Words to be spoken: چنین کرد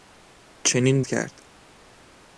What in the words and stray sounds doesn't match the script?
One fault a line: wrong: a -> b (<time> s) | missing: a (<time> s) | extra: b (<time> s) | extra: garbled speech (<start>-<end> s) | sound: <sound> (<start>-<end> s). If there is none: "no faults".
no faults